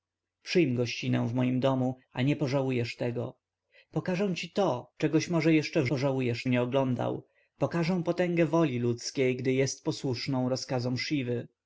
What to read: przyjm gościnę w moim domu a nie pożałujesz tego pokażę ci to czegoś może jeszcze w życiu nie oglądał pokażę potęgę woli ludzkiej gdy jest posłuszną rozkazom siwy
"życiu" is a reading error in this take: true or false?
true